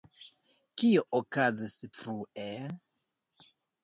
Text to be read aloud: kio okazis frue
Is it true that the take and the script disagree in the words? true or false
false